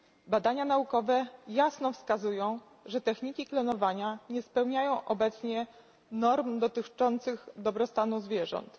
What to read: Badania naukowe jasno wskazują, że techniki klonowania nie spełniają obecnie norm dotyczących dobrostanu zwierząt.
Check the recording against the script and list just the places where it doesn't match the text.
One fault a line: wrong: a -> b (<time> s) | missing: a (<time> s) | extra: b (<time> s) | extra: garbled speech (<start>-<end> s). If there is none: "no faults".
no faults